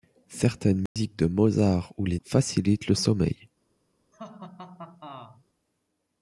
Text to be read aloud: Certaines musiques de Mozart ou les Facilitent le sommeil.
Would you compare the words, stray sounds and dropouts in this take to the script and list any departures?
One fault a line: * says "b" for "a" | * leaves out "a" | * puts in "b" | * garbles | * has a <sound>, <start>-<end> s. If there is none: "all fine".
* has a dropout, 0.9-1.0 s
* has a laugh, 4.1-5.4 s